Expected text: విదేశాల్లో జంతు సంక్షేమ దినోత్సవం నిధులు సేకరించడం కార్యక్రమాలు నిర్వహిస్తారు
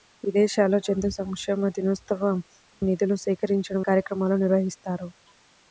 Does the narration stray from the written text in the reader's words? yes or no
no